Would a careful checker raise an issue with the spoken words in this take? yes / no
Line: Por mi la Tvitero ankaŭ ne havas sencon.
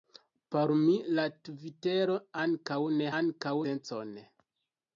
yes